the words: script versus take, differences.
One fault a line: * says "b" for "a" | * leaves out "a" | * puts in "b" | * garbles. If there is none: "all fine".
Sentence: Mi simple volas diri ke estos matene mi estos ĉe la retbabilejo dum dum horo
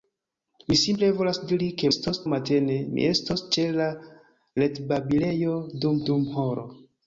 all fine